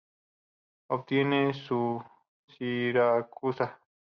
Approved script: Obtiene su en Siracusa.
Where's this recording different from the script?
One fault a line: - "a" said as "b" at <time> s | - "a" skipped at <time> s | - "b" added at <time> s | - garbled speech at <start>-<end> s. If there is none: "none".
- "en" skipped at 2.0 s